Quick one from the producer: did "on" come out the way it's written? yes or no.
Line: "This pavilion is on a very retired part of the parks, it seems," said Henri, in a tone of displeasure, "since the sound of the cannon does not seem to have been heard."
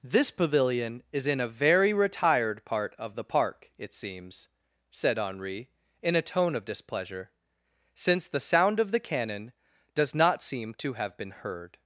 no